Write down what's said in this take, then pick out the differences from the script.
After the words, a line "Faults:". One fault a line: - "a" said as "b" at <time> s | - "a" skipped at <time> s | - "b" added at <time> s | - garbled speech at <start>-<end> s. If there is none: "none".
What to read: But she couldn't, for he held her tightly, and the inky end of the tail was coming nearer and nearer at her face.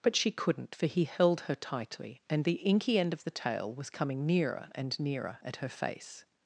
But she couldn't, for he held her tightly, and the inky end of the tail was coming nearer and nearer at her face.
Faults:
none